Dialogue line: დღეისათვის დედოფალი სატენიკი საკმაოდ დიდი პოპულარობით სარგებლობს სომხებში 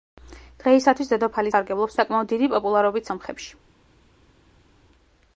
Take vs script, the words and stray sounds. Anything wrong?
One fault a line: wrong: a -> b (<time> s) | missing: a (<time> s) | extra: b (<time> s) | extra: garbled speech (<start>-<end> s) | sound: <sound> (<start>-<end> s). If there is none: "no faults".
wrong: სატენიკი -> სარგებლობს (1.5 s)
missing: სარგებლობს (3.1 s)